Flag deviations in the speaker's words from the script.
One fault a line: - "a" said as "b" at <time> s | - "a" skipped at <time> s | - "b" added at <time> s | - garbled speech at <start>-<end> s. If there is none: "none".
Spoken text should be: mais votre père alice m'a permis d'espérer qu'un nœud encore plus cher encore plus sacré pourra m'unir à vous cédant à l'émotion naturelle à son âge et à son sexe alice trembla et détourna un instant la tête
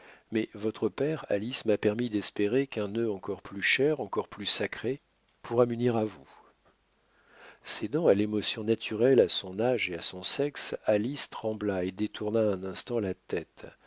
none